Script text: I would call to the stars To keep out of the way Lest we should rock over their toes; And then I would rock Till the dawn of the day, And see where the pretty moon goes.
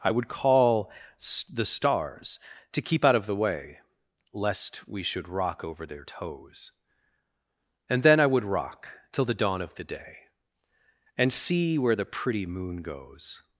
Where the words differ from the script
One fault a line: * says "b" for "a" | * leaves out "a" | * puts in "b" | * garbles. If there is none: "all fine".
* leaves out "to"